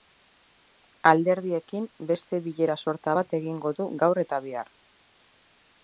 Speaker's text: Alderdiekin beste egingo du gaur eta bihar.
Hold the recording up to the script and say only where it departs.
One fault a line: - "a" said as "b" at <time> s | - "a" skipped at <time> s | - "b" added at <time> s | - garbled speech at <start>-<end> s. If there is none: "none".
- "bilera sorta bat" added at 2.5 s